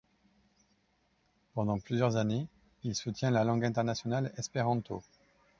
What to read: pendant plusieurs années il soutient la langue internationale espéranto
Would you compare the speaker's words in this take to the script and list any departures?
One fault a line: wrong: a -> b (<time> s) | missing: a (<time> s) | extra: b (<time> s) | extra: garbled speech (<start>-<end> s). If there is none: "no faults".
no faults